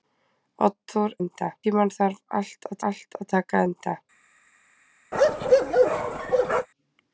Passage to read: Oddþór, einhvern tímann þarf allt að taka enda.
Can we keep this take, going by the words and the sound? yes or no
no